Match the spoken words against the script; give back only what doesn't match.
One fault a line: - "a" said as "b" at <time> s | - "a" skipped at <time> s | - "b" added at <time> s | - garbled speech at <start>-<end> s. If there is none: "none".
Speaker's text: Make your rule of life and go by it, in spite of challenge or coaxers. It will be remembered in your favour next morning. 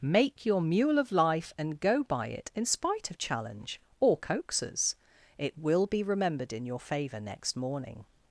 - "rule" said as "mule" at 0.6 s